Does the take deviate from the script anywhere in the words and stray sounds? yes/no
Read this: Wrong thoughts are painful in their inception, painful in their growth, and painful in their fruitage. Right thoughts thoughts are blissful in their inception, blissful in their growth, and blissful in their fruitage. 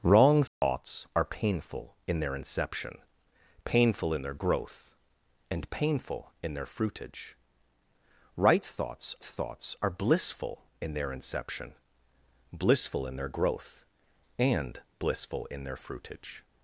yes